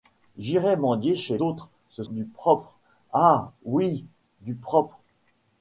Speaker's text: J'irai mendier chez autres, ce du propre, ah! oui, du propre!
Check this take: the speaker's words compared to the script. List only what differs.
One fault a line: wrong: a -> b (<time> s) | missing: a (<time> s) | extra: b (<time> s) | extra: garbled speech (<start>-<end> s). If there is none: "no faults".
no faults